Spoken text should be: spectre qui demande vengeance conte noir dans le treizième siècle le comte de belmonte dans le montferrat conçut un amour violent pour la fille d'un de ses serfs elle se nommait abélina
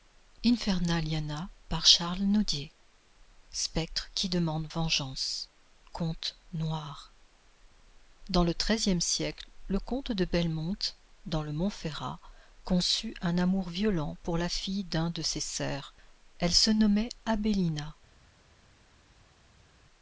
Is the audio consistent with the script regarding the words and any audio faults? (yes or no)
yes